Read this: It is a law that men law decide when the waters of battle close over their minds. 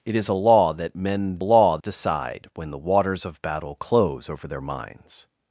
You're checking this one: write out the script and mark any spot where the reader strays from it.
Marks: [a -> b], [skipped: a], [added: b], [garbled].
It is a law that men law decide when the waters of battle close over their minds.